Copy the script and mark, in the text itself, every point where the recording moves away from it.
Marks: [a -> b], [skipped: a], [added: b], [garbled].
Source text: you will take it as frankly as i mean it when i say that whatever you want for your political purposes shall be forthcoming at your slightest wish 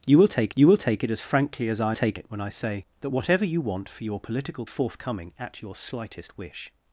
you will take [added: you will take] it as frankly as i [mean -> take] it when i say that whatever you want for your political [skipped: purposes shall be] forthcoming at your slightest wish